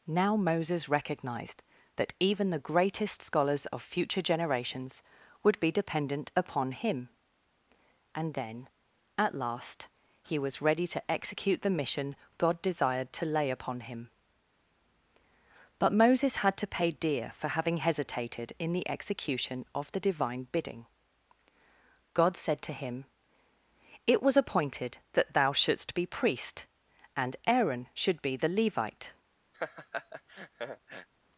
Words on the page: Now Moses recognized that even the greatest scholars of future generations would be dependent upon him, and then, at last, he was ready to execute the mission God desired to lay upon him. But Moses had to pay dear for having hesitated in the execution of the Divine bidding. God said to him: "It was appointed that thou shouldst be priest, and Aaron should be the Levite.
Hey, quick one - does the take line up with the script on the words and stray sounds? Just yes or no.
no